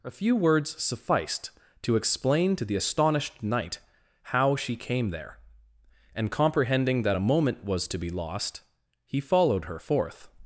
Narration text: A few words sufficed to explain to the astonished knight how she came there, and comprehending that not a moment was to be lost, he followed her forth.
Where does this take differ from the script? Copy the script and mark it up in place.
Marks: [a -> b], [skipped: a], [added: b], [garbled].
A few words sufficed to explain to the astonished knight how she came there, and comprehending that [skipped: not] a moment was to be lost, he followed her forth.